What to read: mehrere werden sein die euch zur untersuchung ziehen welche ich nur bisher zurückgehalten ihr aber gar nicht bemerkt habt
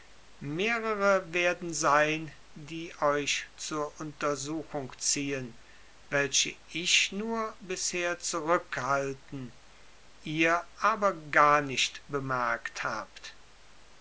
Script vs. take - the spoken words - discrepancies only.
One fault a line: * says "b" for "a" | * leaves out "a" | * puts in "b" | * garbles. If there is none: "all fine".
all fine